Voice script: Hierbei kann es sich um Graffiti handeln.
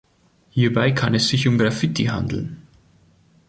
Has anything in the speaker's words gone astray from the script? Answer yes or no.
no